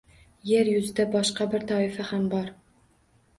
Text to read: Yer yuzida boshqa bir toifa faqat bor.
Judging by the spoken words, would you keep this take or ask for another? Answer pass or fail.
fail